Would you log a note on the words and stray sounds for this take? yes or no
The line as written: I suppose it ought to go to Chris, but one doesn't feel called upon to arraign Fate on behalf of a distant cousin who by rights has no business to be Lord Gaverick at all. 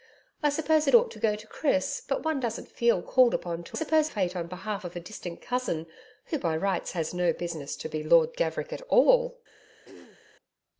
yes